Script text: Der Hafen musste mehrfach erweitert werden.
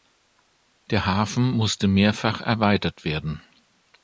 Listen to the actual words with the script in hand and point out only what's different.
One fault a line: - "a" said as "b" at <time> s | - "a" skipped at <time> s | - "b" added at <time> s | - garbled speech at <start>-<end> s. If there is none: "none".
none